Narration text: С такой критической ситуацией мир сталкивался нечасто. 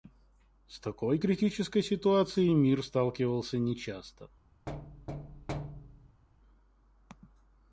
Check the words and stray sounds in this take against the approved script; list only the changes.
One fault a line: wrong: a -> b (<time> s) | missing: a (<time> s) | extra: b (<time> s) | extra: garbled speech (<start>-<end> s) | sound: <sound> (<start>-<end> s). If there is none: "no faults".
sound: thud (4.7-6.2 s)